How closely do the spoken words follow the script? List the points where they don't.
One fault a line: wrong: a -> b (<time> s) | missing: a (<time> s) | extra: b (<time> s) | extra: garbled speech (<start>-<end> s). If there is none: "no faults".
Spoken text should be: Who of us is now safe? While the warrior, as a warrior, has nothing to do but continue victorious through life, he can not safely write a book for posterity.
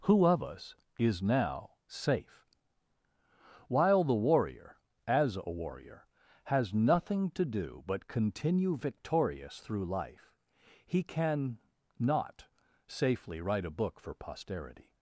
no faults